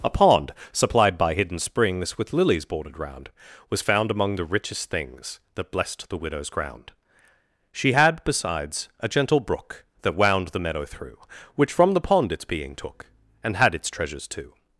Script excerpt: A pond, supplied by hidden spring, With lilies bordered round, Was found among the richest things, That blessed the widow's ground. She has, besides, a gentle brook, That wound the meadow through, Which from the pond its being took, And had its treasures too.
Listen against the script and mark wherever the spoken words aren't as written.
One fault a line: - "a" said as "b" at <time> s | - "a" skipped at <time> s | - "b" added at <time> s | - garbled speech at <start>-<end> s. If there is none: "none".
- "spring" said as "springs" at 1.6 s
- "has" said as "had" at 7.9 s